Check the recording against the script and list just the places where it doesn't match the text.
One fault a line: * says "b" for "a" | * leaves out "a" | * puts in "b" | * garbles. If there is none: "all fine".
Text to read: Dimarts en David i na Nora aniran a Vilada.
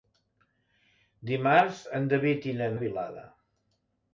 * leaves out "Nora aniran"